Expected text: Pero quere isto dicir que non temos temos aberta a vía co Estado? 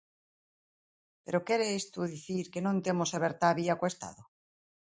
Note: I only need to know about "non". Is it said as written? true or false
true